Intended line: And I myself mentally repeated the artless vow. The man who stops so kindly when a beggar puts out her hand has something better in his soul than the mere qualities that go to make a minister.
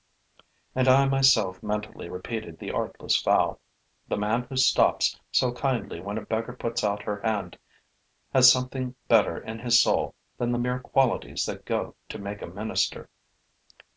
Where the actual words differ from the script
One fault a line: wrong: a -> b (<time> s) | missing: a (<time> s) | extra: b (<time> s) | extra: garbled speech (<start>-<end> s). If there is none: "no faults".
no faults